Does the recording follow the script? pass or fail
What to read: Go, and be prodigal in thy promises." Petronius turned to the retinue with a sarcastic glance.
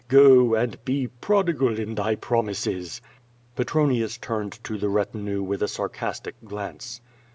pass